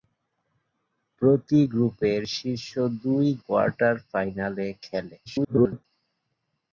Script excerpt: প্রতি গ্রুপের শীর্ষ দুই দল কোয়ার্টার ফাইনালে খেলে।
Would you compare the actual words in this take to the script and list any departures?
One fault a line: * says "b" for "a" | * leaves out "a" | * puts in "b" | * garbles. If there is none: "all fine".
* leaves out "দল"
* garbles